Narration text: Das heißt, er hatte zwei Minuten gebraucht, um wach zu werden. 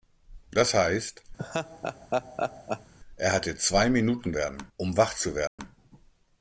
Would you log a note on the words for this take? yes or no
yes